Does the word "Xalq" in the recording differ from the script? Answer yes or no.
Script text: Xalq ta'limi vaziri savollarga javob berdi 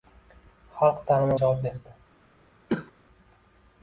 no